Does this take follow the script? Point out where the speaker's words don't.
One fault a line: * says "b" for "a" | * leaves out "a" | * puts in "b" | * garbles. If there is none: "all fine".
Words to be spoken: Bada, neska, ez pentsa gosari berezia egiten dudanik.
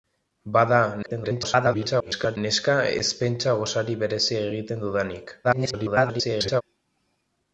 * garbles
* garbles